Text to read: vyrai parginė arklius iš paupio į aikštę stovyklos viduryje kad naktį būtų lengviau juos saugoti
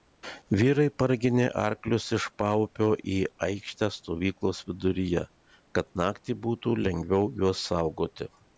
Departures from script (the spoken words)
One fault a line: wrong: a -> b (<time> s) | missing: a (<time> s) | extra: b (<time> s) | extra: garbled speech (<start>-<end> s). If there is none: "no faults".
no faults